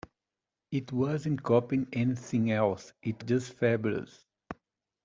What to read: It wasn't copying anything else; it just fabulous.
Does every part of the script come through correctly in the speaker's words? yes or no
yes